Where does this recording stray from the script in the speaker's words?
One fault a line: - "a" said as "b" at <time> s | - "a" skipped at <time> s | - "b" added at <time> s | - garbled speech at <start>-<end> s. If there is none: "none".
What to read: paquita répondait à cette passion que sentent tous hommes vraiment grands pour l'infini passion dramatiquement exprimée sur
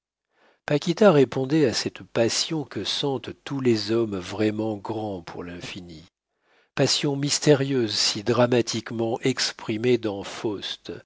- "les" added at 3.6 s
- "mystérieuse si" added at 7.2 s
- "sur" said as "dans" at 10.0 s